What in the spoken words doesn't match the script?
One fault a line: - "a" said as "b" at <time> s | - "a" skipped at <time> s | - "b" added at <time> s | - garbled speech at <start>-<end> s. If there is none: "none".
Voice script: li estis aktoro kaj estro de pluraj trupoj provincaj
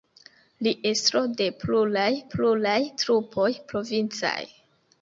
- "estis aktoro kaj" skipped at 0.7 s
- "pluraj" added at 2.3 s